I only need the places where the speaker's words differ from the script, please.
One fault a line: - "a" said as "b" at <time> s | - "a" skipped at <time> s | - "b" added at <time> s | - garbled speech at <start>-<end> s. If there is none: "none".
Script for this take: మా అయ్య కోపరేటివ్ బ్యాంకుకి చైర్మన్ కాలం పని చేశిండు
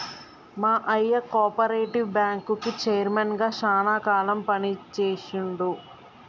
- "గా శానా" added at 3.4 s